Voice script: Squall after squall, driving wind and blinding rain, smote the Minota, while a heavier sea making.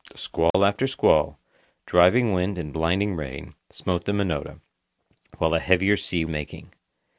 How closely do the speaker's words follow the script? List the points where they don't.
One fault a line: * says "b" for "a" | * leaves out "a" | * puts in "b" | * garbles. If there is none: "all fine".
all fine